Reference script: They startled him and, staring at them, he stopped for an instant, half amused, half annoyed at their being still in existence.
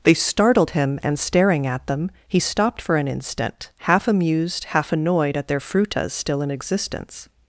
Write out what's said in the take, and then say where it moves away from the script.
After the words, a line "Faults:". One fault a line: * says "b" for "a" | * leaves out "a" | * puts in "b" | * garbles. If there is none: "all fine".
They startled him and, staring at them, he stopped for an instant, half amused, half annoyed at their frutas still in existence.
Faults:
* says "frutas" for "being"